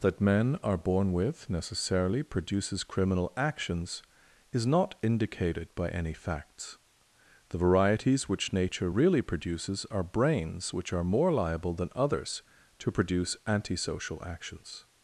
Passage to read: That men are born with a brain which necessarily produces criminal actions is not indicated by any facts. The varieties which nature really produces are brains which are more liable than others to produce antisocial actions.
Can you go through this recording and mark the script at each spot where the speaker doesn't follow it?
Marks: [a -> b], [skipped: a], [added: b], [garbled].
That men are born with [skipped: a brain which] necessarily produces criminal actions is not indicated by any facts. The varieties which nature really produces are brains which are more liable than others to produce antisocial actions.